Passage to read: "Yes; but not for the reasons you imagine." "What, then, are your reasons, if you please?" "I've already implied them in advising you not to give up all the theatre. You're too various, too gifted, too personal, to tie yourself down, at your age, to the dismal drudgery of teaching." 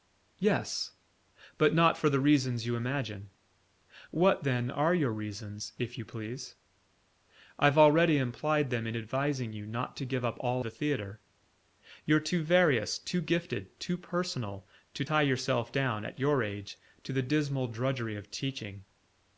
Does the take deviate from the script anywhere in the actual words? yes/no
no